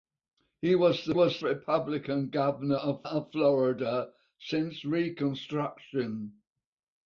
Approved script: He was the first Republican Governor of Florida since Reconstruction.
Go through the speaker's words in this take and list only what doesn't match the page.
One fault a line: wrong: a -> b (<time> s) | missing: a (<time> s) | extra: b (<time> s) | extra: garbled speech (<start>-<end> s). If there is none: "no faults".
wrong: first -> was (1.1 s)
extra: of (3.0 s)